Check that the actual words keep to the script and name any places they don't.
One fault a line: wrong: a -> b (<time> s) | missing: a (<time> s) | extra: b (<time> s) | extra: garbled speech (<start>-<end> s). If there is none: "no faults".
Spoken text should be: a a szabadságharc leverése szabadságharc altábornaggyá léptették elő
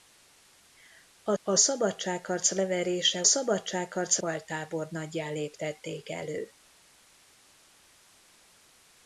no faults